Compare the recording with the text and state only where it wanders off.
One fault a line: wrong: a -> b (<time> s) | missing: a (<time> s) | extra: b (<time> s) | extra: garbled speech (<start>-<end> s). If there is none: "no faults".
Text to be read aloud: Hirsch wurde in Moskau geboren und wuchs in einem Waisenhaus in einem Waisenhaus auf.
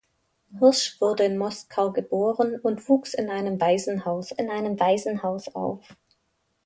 no faults